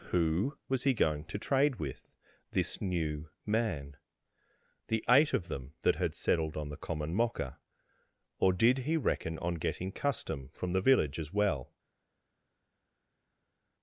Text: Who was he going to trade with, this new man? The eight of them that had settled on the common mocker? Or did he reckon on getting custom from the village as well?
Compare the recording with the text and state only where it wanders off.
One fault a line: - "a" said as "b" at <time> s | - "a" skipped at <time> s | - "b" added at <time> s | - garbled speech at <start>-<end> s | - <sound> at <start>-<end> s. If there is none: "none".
none